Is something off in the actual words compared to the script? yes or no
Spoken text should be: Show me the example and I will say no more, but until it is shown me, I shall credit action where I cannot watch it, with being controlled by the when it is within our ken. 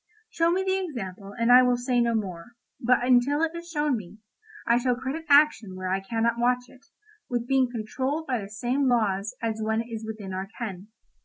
yes